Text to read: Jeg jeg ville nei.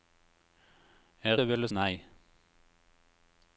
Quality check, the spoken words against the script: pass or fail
pass